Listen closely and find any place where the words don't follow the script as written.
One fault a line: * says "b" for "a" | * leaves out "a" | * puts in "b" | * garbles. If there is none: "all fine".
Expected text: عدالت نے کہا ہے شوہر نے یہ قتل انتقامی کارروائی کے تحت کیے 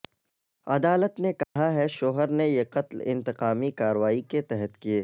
all fine